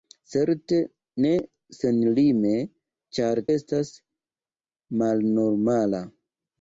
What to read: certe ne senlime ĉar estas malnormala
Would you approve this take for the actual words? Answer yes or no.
yes